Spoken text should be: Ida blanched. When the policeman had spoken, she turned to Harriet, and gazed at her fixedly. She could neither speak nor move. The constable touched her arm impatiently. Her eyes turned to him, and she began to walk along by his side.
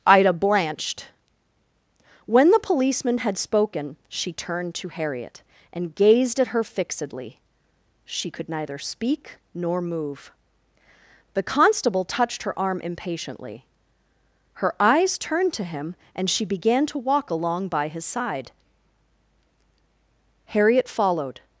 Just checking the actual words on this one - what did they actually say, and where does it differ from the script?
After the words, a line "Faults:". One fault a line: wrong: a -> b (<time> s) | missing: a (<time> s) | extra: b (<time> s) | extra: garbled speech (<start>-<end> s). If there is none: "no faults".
Ida blanched. When the policeman had spoken, she turned to Harriet, and gazed at her fixedly. She could neither speak nor move. The constable touched her arm impatiently. Her eyes turned to him, and she began to walk along by his side. Harriet followed
Faults:
extra: Harriet followed (20.4 s)